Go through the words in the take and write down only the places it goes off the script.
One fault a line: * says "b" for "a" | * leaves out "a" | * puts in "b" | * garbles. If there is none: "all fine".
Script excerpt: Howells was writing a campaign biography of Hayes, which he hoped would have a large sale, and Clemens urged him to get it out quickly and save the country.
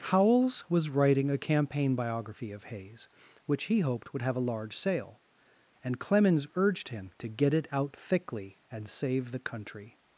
* says "thickly" for "quickly"